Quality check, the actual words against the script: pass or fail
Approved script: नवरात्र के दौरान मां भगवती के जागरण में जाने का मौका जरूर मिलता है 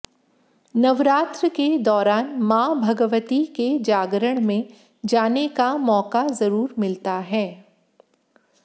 pass